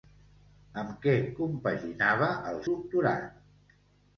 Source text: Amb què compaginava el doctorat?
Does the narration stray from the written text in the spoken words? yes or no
no